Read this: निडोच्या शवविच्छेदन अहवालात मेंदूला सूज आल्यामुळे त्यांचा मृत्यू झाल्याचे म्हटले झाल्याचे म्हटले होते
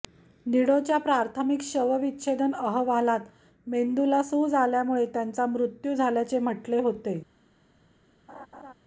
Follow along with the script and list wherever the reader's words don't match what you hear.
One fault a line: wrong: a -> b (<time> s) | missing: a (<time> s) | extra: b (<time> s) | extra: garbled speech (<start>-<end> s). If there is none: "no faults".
extra: प्राथमिक (1.0 s)
missing: झाल्याचे म्हटले (6.8 s)